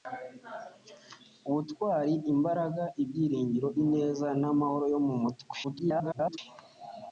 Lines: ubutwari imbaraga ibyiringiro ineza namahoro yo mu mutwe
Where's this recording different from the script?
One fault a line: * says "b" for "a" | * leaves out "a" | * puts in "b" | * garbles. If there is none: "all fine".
* garbles